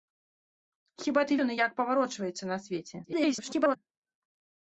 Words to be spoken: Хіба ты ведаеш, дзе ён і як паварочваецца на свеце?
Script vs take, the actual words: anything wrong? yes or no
yes